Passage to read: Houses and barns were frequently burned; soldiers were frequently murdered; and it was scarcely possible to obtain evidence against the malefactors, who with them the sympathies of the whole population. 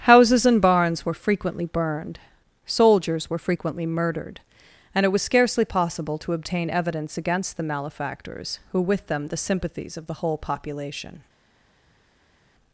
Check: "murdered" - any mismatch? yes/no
no